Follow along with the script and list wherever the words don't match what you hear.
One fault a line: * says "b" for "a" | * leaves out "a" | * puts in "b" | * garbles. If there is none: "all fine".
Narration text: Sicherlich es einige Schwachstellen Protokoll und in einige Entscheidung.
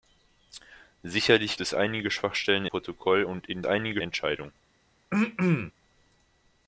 all fine